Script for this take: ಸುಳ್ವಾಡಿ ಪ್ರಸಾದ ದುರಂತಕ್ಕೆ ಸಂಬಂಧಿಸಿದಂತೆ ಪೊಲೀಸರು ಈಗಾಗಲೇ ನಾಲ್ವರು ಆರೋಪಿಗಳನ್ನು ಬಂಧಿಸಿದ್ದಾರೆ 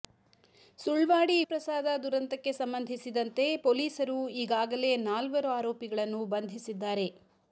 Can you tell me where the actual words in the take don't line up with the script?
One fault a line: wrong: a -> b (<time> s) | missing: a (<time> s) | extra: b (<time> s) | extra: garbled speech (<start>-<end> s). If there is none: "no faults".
no faults